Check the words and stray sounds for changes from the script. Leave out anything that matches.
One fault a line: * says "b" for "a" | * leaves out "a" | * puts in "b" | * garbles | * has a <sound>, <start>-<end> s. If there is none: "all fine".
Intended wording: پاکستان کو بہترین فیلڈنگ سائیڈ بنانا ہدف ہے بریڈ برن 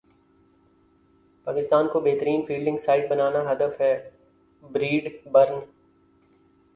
all fine